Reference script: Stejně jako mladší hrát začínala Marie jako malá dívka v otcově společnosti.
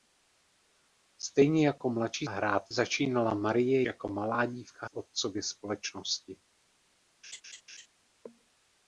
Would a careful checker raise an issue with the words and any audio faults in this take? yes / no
yes